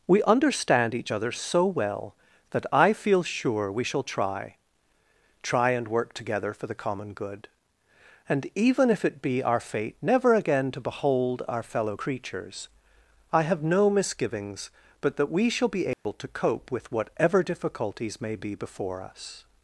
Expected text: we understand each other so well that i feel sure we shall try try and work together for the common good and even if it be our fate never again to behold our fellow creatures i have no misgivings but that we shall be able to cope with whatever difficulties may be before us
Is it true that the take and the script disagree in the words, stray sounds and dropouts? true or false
true